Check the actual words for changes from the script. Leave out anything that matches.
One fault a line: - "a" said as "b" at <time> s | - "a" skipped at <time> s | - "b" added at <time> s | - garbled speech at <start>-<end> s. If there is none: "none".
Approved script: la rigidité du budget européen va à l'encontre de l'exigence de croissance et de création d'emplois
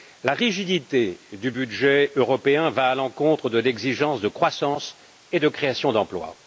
none